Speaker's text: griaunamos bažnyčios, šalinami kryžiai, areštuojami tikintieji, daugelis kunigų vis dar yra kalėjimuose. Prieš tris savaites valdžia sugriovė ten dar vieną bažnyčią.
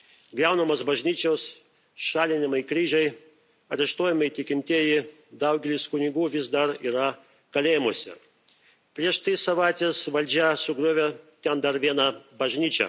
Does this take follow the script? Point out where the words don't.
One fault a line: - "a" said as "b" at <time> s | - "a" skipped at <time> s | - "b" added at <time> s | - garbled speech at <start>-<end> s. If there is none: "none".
none